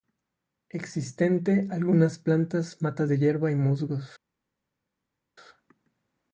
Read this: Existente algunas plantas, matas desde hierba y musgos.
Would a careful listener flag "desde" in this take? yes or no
yes